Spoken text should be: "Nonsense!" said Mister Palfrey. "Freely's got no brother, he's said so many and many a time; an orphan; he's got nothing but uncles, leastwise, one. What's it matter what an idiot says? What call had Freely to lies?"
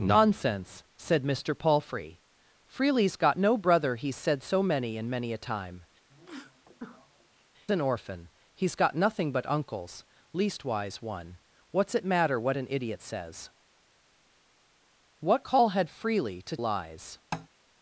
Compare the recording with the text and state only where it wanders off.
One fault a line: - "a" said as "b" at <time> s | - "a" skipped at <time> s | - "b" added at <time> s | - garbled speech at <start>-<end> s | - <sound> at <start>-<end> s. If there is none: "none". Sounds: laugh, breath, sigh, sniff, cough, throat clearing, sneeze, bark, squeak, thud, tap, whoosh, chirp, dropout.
- sneeze at 6.1-7.5 s
- tap at 17.3-17.5 s